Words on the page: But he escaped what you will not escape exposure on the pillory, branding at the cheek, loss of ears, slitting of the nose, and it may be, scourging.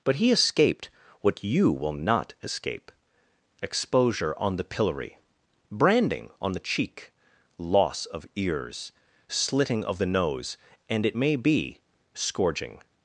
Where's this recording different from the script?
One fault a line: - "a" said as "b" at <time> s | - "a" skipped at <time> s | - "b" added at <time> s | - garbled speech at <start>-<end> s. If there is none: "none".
- "at" said as "on" at 6.4 s